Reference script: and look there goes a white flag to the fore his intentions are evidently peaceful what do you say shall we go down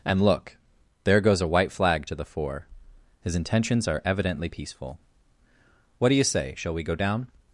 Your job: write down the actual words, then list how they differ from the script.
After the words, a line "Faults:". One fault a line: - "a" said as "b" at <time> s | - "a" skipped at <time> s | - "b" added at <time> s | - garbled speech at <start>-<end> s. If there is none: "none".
and look there goes a white flag to the fore his intentions are evidently peaceful what do you say shall we go down
Faults:
none